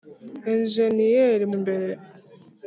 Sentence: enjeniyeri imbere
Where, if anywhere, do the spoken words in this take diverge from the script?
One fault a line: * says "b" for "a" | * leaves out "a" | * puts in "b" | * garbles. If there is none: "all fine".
all fine